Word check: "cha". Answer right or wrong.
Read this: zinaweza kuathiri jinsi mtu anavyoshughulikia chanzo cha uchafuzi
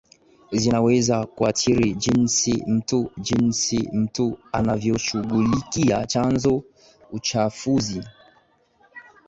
wrong